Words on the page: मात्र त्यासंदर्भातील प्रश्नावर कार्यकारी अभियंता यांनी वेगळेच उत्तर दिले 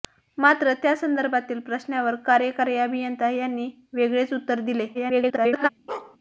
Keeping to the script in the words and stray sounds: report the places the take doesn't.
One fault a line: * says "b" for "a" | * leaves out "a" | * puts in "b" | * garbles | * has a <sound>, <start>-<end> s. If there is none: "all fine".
* garbles
* has a bark, 5.9-6.2 s